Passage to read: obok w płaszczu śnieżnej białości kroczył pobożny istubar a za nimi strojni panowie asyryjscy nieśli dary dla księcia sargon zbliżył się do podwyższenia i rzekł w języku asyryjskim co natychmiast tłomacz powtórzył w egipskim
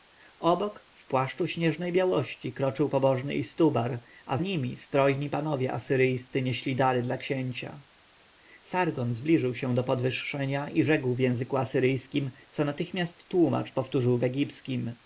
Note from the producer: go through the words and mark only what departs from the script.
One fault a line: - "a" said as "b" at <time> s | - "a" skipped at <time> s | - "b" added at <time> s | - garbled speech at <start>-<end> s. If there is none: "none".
- "za" skipped at 4.4 s